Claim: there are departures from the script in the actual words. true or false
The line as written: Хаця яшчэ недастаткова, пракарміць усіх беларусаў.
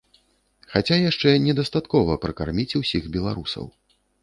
false